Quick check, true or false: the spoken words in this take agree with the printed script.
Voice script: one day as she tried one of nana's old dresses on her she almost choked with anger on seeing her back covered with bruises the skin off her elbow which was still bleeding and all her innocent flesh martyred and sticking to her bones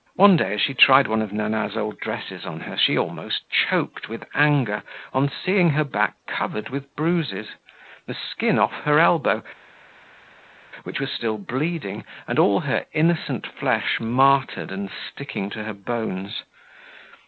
true